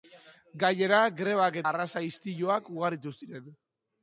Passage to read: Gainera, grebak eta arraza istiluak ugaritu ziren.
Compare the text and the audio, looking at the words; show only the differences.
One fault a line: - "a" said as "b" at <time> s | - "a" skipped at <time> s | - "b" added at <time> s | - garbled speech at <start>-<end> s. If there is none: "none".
- "eta" skipped at 1.6 s